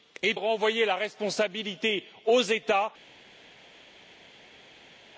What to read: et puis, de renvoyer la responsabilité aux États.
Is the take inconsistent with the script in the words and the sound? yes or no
yes